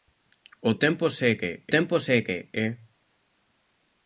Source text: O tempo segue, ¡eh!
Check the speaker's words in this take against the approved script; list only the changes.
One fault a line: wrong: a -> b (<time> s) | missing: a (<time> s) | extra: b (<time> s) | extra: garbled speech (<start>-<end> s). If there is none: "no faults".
extra: tempo segue (1.7 s)